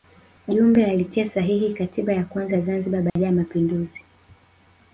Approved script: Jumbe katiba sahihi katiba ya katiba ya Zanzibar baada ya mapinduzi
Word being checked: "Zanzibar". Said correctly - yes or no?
yes